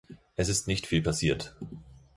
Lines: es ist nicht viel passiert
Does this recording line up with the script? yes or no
yes